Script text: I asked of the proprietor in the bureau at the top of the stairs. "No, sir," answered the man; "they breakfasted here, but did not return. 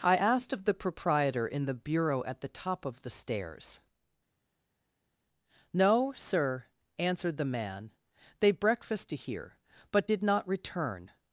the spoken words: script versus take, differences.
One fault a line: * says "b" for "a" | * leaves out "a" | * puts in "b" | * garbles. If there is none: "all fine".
all fine